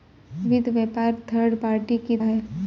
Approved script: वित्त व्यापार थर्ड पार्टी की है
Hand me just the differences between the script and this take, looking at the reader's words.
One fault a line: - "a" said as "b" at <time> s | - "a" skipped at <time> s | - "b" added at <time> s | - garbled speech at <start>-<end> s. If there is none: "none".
none